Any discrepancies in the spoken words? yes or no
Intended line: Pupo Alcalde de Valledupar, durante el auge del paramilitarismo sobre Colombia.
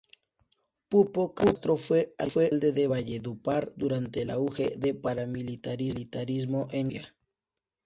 yes